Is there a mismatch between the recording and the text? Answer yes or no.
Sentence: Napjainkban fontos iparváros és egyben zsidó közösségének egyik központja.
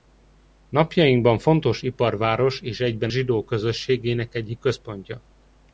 no